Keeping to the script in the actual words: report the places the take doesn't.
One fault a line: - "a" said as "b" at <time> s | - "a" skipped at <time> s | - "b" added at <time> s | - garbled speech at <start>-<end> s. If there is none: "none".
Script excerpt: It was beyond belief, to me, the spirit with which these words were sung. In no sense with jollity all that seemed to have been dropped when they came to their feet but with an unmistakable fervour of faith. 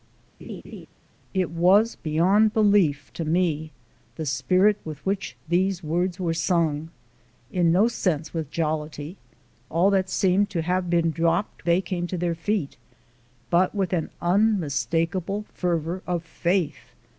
- "when" skipped at 11.6 s